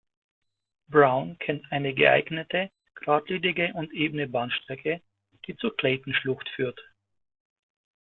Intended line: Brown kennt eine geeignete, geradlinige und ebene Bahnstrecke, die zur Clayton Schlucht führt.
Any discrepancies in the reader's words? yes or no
no